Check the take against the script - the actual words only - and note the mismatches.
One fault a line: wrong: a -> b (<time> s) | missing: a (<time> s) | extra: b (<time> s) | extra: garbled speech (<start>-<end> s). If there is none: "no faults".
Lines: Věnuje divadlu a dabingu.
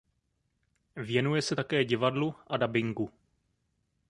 extra: se také (1.4 s)